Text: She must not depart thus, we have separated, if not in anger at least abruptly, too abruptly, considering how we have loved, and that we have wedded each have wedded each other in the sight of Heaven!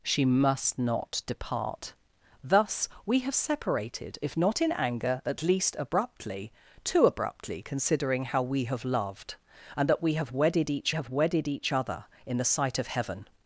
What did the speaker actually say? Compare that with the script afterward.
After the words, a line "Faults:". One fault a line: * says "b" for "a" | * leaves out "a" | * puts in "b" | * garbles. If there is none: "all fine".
She must not depart thus, we have separated, if not in anger at least abruptly, too abruptly, considering how we have loved, and that we have wedded each have wedded each other in the sight of Heaven!
Faults:
all fine